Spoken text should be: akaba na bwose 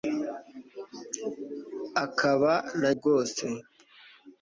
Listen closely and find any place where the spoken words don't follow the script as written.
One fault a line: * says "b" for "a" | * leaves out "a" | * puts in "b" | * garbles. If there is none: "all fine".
all fine